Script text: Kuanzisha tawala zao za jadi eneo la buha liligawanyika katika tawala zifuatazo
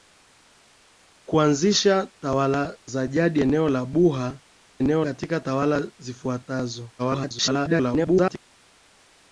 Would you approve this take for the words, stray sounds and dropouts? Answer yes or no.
no